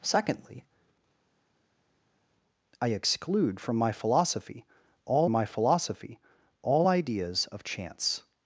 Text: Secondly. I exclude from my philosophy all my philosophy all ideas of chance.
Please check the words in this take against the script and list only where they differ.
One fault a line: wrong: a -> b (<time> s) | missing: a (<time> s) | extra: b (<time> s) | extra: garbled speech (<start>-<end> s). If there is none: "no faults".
no faults